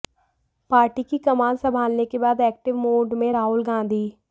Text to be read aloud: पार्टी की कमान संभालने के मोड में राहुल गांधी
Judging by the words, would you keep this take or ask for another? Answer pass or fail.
fail